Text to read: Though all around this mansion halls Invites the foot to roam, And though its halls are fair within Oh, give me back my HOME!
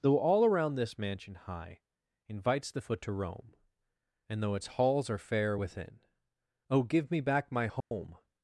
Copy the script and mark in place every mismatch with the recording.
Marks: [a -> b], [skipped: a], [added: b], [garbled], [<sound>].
Though all around this mansion [halls -> high] Invites the foot to roam, And though its halls are fair within Oh, give me back my HOME! [dropout]